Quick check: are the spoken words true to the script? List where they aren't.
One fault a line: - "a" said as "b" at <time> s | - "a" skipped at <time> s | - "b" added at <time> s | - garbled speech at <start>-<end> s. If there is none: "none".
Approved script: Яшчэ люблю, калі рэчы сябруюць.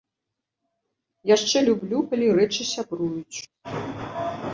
none